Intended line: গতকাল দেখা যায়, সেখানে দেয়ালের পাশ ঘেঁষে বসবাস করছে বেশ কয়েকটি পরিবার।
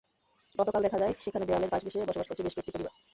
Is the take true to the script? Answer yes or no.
yes